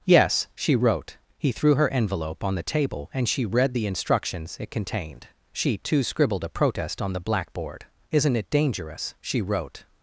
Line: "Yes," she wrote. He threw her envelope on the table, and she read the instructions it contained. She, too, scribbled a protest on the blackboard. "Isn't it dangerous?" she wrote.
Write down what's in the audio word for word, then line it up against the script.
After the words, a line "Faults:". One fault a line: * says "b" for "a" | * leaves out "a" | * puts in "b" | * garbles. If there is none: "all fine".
"Yes," she wrote. He threw her envelope on the table, and she read the instructions it contained. She, too, scribbled a protest on the blackboard. "Isn't it dangerous?" she wrote.
Faults:
all fine